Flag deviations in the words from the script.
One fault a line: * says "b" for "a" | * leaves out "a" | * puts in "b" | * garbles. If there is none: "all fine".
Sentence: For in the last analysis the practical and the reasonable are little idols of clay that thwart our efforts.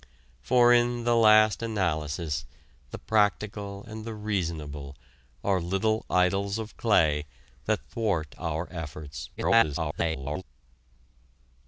* garbles